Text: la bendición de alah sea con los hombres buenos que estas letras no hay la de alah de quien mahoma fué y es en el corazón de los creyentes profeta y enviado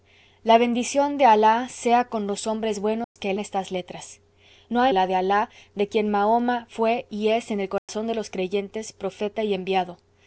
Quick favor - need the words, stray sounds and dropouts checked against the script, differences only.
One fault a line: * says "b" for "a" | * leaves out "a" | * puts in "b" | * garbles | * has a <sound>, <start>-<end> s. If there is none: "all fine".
* has a dropout, 3.0-3.2 s
* has a dropout, 7.8-7.9 s